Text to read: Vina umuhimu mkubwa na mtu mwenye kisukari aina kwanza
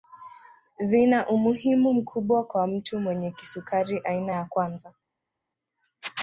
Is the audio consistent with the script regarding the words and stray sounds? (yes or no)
no